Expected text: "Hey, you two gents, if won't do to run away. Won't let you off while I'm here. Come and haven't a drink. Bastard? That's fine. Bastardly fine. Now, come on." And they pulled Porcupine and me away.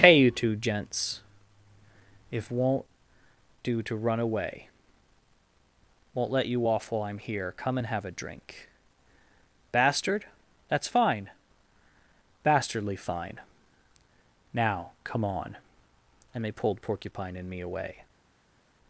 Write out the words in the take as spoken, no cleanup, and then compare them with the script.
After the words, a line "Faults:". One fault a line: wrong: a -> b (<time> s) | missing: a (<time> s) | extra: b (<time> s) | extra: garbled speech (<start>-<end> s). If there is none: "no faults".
"Hey, you two gents, if won't do to run away. Won't let you off while I'm here. Come and have a drink. Bastard? That's fine. Bastardly fine. Now, come on." And they pulled Porcupine and me away.
Faults:
wrong: haven't -> have (7.9 s)